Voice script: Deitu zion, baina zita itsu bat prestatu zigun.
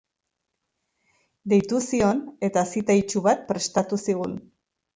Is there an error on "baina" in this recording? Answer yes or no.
yes